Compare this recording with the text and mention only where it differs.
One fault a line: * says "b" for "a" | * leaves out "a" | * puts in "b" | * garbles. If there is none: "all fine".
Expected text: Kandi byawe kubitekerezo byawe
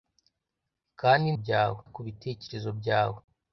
all fine